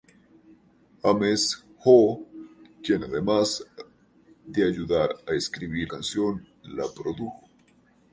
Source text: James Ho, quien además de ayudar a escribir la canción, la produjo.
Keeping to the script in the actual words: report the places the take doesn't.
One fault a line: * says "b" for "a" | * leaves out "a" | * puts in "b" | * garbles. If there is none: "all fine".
* leaves out "la"